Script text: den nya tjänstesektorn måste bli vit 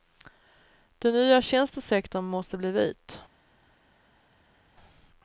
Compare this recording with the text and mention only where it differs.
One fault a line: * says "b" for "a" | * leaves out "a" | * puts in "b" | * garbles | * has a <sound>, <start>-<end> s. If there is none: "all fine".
all fine